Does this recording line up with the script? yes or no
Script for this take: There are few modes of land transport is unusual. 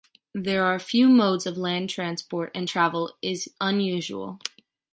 no